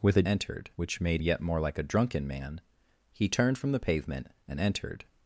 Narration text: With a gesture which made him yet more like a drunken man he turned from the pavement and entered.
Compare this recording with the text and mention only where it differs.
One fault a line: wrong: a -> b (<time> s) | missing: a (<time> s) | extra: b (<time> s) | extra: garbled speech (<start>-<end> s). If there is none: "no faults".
wrong: gesture -> entered (0.3 s)
missing: him (1.2 s)